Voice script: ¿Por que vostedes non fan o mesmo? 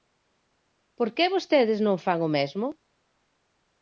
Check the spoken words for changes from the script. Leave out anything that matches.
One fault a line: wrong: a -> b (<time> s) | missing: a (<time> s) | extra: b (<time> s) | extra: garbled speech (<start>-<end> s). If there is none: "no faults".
no faults